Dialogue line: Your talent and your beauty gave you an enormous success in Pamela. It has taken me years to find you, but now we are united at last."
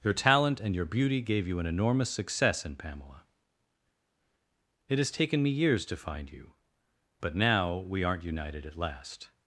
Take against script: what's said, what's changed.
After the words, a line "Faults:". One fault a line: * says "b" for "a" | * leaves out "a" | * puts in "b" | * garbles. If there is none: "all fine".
Your talent and your beauty gave you an enormous success in Pamela. It has taken me years to find you, but now we aren't united at last."
Faults:
* says "aren't" for "are"